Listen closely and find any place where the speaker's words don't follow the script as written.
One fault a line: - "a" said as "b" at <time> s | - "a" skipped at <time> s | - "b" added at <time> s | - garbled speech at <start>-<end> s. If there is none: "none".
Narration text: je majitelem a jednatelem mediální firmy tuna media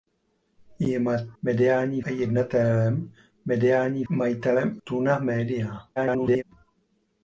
- "majitelem" said as "mediální" at 1.4 s
- "firmy" said as "majitelem" at 4.1 s
- garbled speech at 6.0-6.4 s